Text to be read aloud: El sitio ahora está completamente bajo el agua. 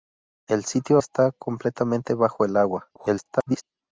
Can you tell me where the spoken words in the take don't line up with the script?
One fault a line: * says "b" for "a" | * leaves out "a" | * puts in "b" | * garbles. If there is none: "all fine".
* leaves out "ahora"
* garbles